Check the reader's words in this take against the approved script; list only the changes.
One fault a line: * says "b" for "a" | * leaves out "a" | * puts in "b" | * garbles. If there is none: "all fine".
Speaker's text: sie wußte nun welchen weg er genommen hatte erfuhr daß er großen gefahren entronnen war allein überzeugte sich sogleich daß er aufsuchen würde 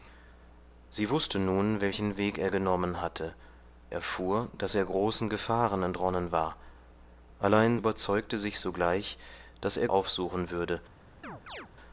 all fine